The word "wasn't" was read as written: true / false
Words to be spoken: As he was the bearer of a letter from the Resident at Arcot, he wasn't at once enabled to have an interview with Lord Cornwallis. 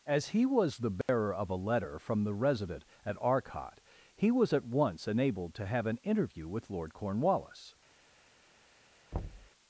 false